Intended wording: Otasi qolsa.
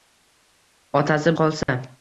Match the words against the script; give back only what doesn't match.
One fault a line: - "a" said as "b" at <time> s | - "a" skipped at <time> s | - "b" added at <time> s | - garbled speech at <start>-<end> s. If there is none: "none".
none